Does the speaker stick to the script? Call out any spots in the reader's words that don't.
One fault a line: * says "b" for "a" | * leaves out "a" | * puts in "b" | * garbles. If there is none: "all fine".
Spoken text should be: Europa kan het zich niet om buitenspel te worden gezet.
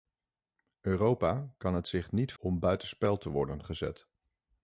all fine